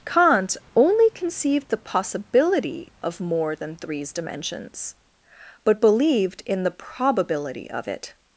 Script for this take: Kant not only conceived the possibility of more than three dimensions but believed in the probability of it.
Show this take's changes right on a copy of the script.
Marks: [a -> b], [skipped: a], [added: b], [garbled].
Kant [skipped: not] only conceived the possibility of more than [three -> threes] dimensions but believed in the probability of it.